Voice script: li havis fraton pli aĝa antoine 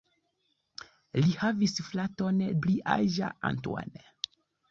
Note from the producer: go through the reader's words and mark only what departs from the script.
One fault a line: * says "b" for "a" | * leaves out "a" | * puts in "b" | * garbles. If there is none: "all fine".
all fine